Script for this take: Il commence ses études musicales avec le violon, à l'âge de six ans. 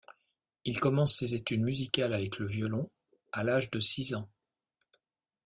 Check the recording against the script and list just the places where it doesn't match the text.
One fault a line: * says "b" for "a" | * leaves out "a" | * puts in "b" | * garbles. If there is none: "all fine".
all fine